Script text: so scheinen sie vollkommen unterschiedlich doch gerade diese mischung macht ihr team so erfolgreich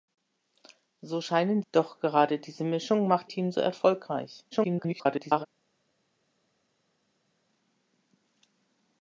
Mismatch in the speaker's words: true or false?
true